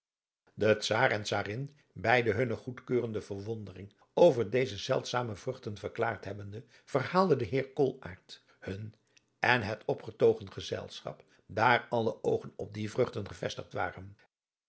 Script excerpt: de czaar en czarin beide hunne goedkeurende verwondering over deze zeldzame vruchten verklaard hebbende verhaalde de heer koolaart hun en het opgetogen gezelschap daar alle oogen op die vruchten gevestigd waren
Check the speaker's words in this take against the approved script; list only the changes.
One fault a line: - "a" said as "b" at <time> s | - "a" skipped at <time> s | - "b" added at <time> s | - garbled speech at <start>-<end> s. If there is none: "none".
none